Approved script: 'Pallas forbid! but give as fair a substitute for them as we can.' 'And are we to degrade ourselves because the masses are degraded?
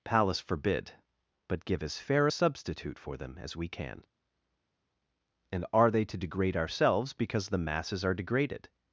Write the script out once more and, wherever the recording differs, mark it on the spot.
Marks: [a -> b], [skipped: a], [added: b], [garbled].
'Pallas forbid! but give as fair a substitute for them as we can.' 'And are [we -> they] to degrade ourselves because the masses are degraded?